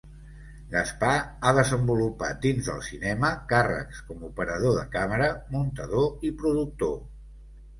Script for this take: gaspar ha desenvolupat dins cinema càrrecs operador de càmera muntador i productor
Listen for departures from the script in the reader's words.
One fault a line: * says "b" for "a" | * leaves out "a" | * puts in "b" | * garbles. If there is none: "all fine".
* puts in "del"
* puts in "com"